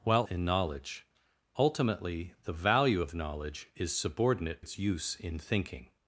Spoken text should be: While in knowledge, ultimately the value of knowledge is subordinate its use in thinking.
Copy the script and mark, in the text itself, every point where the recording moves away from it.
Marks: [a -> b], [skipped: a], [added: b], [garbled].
While in knowledge, ultimately the value of knowledge is subordinate its use in thinking.